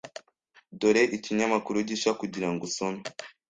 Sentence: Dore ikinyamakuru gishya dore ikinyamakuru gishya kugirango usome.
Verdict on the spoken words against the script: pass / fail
fail